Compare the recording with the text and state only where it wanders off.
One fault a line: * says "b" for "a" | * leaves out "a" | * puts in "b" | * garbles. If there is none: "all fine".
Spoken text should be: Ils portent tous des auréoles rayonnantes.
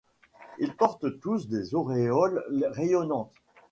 all fine